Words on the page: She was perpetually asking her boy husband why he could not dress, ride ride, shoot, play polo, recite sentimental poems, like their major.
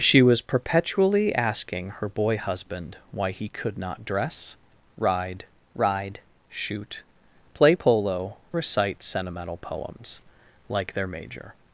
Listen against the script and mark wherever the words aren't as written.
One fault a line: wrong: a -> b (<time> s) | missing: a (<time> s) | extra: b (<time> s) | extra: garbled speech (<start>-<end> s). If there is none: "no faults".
no faults